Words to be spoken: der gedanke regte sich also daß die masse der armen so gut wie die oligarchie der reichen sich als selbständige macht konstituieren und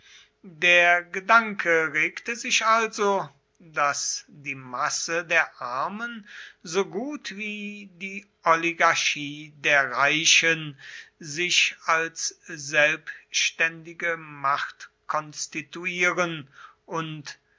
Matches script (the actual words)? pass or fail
pass